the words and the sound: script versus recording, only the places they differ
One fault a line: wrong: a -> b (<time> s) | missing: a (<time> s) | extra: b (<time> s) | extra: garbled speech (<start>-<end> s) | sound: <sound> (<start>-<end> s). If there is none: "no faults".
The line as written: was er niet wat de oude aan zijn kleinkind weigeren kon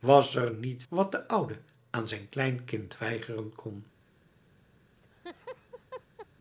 sound: laugh (5.0-6.3 s)